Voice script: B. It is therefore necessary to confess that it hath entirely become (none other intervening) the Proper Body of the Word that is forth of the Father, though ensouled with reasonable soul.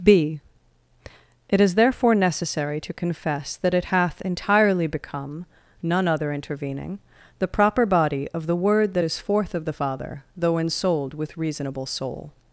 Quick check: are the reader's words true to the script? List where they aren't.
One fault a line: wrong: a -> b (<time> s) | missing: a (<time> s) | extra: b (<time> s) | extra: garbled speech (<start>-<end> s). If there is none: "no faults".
no faults